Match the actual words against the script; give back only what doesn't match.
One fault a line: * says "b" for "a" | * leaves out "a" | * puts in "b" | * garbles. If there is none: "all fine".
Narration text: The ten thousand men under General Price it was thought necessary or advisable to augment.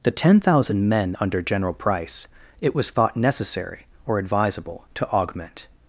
all fine